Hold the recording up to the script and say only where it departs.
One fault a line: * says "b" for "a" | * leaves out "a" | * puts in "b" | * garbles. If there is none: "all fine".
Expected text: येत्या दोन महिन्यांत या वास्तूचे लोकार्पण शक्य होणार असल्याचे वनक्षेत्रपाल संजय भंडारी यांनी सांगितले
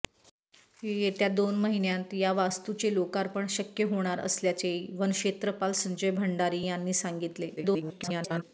* garbles